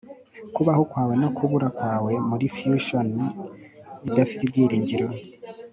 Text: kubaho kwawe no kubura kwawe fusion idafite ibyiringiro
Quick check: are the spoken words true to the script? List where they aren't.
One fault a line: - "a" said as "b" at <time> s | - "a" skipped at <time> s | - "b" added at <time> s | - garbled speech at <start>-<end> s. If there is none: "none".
- "muri" added at 2.3 s